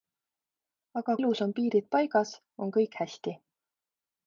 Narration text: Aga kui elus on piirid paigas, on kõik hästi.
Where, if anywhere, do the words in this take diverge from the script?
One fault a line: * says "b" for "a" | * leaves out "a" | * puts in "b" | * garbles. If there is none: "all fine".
* leaves out "kui"